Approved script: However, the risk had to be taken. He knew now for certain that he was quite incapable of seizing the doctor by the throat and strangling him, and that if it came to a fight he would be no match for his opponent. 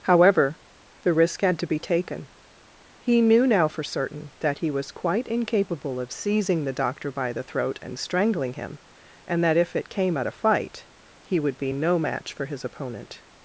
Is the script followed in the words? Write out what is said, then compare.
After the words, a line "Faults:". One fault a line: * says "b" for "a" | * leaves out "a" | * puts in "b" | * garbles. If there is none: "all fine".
However, the risk had to be taken. He knew now for certain that he was quite incapable of seizing the doctor by the throat and strangling him, and that if it came at a fight he would be no match for his opponent.
Faults:
* says "at" for "to"